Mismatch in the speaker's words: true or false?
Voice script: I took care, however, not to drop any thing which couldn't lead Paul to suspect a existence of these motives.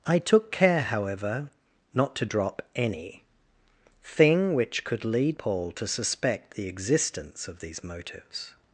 true